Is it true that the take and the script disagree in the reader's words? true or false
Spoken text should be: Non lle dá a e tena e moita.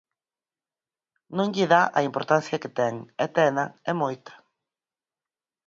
true